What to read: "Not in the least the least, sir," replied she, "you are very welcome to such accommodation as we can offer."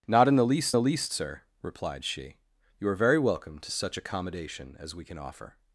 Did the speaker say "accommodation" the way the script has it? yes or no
yes